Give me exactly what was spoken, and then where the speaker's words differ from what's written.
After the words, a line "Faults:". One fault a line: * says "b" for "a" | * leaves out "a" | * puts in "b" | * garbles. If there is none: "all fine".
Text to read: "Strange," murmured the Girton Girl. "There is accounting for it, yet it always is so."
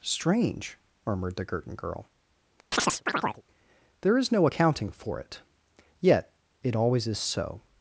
"Strange," murmured the Girton Girl. "There is no accounting for it, yet it always is so."
Faults:
* puts in "no"